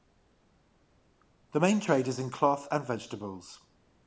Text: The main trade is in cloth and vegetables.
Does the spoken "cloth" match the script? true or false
true